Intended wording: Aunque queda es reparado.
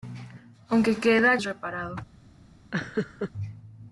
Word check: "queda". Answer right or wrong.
right